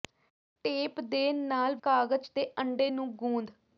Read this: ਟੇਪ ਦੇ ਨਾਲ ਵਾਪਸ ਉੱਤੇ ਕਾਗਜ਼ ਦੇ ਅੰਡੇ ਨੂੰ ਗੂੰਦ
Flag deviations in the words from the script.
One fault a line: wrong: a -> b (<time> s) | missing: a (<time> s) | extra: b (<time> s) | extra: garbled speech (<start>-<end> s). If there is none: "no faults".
missing: ਵਾਪਸ ਉੱਤੇ (1.8 s)